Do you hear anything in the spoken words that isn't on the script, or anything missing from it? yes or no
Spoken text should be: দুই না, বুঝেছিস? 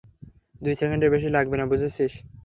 yes